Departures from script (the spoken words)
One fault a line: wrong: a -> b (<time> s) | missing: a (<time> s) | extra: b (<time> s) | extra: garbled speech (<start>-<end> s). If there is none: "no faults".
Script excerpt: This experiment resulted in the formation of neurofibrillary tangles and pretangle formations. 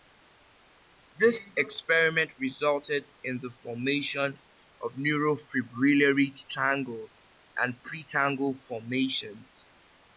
no faults